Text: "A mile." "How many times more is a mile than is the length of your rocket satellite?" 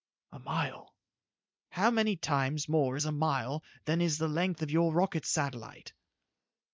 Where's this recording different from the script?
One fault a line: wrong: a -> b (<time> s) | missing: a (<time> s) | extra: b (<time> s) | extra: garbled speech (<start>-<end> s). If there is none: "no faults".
no faults